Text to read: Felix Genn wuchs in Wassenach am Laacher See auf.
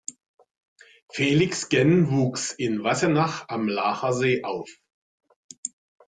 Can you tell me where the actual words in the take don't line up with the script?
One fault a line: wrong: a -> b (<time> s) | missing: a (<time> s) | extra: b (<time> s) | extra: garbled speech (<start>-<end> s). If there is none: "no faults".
no faults